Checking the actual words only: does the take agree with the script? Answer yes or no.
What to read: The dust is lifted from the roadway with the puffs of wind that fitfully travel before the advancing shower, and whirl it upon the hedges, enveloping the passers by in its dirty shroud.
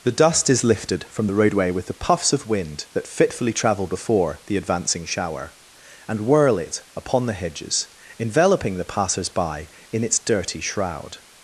yes